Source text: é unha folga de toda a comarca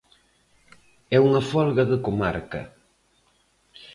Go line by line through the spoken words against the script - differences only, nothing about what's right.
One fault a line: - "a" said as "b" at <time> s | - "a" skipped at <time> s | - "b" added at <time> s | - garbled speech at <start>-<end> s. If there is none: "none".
- "toda a" skipped at 2.0 s